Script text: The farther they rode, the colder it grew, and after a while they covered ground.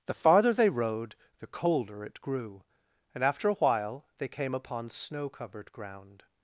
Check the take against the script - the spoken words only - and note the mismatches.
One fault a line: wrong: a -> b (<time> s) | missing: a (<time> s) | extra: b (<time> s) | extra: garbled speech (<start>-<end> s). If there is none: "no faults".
extra: came upon snow (4.3 s)